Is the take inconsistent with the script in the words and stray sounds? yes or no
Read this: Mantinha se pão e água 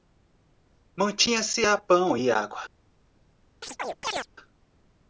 yes